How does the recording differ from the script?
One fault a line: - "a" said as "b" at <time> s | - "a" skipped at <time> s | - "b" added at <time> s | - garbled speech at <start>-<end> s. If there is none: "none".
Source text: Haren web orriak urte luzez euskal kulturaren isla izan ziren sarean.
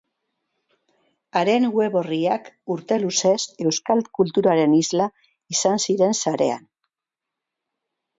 none